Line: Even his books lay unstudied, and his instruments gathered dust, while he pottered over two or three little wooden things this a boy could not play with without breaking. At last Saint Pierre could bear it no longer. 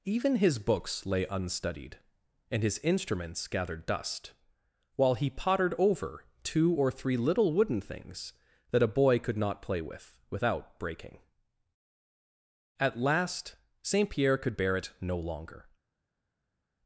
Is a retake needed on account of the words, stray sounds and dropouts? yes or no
yes